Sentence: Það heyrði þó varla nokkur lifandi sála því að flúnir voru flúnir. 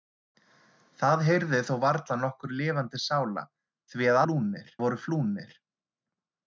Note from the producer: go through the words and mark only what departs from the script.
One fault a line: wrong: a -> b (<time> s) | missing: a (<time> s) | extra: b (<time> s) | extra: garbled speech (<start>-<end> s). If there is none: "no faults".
no faults